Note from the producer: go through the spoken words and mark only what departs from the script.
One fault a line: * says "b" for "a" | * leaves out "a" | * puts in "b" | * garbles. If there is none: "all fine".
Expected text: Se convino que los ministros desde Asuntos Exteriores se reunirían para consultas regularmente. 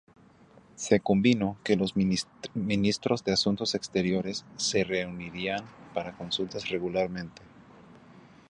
* says "de" for "desde"